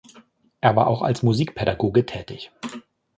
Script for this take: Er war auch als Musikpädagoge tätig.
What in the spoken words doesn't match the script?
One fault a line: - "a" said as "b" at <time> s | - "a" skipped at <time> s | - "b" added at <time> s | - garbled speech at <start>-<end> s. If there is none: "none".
none